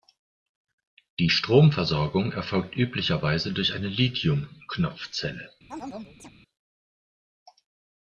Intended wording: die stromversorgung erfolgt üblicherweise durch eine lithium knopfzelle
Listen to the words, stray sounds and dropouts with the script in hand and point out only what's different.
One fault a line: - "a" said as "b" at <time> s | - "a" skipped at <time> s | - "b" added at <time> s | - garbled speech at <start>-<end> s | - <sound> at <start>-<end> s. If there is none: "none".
- chirp at 5.7-6.3 s